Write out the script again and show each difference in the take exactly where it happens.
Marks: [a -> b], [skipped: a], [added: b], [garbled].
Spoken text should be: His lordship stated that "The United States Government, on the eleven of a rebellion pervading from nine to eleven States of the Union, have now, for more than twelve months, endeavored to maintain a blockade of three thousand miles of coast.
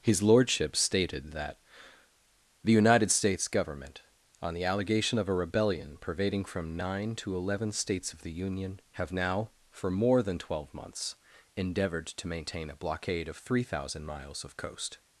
His lordship stated that "The United States Government, on the [eleven -> allegation] of a rebellion pervading from nine to eleven States of the Union, have now, for more than twelve months, endeavored to maintain a blockade of three thousand miles of coast.